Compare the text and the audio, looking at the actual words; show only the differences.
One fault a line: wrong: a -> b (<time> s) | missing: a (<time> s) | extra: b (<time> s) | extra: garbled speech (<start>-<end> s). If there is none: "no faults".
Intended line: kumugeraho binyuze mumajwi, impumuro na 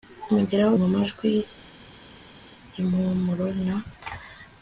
missing: binyuze (0.7 s)